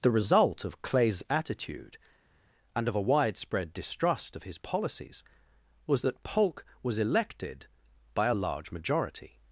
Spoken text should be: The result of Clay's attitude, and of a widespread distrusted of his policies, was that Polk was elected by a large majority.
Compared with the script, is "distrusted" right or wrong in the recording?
wrong